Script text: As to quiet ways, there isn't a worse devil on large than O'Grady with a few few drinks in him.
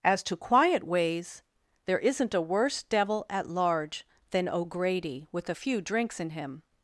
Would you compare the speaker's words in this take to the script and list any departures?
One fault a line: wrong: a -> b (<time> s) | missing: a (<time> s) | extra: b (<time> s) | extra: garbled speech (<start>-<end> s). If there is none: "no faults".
wrong: on -> at (3.3 s)
missing: few (5.8 s)